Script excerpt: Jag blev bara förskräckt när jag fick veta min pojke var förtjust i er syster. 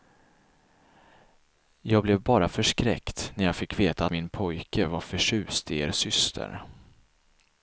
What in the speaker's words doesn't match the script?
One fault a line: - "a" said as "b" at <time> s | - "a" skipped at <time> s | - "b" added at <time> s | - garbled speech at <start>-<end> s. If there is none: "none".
none